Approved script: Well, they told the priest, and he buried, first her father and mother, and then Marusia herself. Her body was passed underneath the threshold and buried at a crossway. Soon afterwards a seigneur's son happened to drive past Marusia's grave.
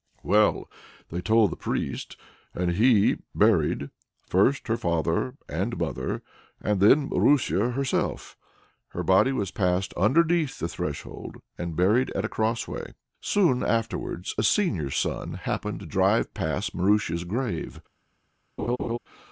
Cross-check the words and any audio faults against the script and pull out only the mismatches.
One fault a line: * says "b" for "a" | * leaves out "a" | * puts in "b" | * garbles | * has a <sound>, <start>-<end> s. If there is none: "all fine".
* has a laugh, 18.6-19.0 s